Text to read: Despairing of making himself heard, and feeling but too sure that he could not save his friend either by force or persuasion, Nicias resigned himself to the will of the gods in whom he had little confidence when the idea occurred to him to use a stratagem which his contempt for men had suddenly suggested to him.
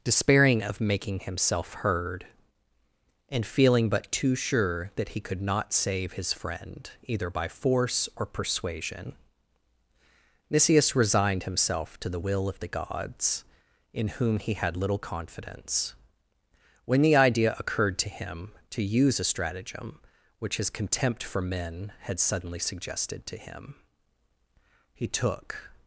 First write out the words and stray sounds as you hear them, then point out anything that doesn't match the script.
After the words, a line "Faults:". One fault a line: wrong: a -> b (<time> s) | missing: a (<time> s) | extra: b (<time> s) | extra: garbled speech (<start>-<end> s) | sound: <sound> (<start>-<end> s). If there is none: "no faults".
Despairing of making himself heard, and feeling but too sure that he could not save his friend either by force or persuasion, Nicias resigned himself to the will of the gods in whom he had little confidence when the idea occurred to him to use a stratagem which his contempt for men had suddenly suggested to him. He took
Faults:
extra: He took (24.9 s)